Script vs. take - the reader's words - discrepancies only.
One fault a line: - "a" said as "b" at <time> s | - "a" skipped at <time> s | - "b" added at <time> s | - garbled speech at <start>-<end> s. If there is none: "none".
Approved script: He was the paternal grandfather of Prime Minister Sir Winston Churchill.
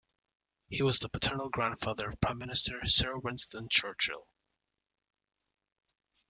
none